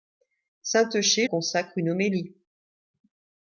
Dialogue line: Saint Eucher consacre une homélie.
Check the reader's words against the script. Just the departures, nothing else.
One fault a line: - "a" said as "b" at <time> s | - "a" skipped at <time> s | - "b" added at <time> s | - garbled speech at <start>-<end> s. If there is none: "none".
none